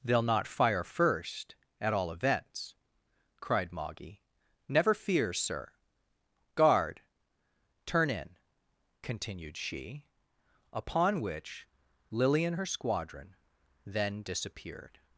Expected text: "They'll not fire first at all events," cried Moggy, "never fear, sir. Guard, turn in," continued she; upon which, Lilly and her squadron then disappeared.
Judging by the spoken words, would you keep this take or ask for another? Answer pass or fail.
pass